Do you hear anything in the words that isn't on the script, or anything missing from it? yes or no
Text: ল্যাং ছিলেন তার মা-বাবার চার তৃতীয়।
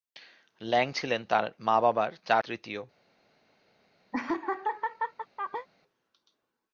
no